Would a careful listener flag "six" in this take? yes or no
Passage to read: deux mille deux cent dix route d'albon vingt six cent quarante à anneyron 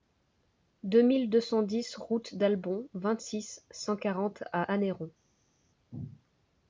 no